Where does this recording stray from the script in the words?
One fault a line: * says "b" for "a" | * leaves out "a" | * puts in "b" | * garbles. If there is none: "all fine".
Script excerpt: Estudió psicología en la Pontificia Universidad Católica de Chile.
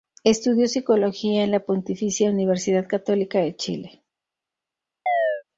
all fine